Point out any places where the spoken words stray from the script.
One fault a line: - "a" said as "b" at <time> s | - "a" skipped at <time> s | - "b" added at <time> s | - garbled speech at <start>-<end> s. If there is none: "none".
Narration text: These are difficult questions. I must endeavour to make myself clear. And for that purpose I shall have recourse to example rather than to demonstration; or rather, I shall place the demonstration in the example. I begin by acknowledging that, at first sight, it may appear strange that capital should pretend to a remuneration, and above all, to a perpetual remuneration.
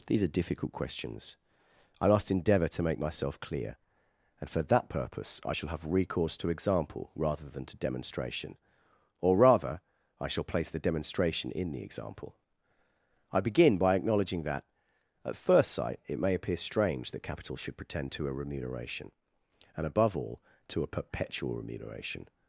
none